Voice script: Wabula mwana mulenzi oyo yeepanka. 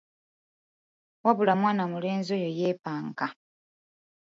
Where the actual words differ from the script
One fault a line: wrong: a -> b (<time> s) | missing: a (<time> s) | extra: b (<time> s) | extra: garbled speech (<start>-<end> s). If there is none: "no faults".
no faults